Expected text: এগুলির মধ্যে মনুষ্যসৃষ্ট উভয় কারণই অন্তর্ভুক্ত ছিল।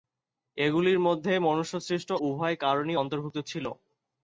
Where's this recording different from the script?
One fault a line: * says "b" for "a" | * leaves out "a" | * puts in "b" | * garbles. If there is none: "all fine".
all fine